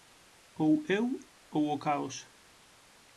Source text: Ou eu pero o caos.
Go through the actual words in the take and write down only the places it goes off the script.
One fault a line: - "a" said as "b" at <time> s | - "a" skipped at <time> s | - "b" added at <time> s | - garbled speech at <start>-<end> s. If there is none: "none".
- "pero" said as "ou" at 1.5 s